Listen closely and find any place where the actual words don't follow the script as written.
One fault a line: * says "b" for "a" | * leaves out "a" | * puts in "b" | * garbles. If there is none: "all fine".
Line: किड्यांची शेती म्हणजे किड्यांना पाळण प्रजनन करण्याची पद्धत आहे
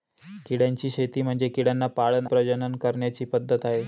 all fine